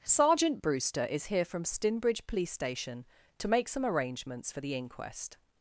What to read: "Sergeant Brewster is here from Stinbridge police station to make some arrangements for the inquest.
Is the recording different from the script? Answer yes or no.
no